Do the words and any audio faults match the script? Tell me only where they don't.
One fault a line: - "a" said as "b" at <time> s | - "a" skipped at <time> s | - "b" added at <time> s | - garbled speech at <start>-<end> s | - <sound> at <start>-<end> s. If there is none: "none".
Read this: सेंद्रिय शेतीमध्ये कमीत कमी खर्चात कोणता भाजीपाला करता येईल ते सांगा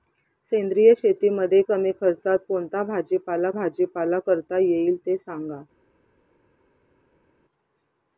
- "कमीत" skipped at 1.6 s
- "भाजीपाला" added at 3.5 s